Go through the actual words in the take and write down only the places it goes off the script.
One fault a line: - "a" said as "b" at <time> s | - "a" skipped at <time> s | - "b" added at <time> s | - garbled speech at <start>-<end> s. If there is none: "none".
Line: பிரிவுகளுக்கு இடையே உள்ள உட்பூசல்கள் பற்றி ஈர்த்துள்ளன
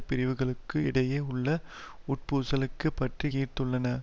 none